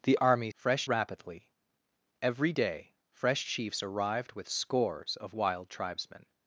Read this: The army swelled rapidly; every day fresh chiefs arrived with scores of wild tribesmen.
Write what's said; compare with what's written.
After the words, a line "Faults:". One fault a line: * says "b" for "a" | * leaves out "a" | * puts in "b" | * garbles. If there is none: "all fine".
The army fresh rapidly; every day fresh chiefs arrived with scores of wild tribesmen.
Faults:
* says "fresh" for "swelled"